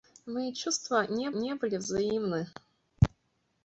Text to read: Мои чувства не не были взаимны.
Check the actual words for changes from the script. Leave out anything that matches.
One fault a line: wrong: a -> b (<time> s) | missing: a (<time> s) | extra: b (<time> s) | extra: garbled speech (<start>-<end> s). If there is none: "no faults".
no faults